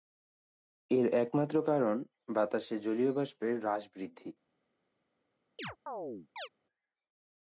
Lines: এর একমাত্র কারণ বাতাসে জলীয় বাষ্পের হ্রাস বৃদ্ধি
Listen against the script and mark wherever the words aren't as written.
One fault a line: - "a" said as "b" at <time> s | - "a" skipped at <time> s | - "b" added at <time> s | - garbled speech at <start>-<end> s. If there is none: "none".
none